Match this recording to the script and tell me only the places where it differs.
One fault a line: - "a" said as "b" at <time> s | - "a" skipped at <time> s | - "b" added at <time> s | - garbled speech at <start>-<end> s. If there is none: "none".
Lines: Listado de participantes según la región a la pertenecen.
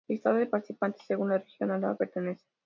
none